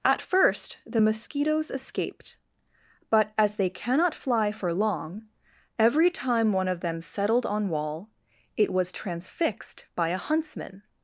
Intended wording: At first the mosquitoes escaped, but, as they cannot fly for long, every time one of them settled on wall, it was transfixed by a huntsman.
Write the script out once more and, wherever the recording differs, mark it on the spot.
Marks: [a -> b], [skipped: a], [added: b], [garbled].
At first the mosquitoes escaped, but, as they cannot fly for long, every time one of them settled on wall, it was transfixed by a huntsman.